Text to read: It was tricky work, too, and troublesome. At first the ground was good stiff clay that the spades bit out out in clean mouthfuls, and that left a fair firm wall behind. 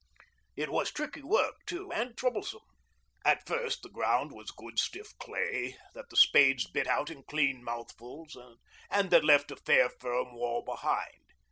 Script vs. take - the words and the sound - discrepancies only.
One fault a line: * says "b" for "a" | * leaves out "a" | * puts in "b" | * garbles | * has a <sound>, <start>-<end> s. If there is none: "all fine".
* leaves out "out"